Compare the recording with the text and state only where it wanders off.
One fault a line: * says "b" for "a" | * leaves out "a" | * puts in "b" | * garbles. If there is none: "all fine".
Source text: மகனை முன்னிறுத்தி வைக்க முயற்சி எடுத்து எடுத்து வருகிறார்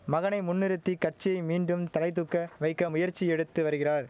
* puts in "கட்சியை மீண்டும் தலைதூக்க"
* leaves out "எடுத்து"